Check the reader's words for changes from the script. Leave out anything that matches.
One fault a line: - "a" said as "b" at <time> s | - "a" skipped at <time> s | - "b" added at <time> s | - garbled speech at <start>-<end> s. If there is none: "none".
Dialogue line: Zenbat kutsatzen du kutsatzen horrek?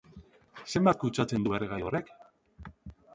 - "kutsatzen" said as "erregai" at 1.6 s